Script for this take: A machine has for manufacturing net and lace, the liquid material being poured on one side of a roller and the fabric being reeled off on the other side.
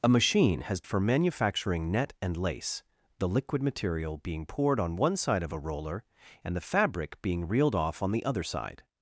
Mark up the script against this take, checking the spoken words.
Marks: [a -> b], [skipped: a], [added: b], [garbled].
A machine has for manufacturing net and lace, the liquid material being poured on one side of a roller and the fabric being reeled off on the other side.